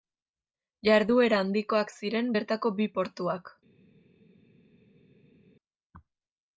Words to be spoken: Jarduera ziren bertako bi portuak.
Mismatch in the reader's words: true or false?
true